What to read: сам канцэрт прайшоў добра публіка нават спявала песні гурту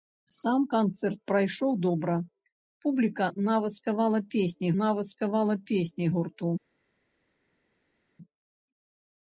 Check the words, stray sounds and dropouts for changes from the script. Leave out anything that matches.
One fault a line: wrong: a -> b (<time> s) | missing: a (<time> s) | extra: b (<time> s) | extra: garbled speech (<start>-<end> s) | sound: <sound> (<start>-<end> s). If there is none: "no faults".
extra: нават спявала песні (4.8 s)